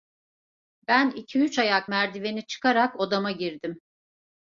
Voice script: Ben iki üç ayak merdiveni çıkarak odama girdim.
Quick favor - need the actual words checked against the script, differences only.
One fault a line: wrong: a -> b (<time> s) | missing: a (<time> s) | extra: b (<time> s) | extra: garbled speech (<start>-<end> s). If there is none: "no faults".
no faults